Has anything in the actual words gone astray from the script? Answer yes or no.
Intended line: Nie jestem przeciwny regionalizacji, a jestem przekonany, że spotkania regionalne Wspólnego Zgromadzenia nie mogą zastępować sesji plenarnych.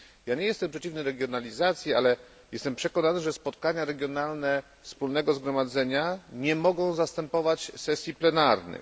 yes